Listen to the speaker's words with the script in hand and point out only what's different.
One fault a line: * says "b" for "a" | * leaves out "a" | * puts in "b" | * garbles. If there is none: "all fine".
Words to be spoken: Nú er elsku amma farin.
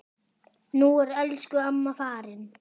all fine